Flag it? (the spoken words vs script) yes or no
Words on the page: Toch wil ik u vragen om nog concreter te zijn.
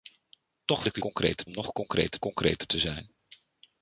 yes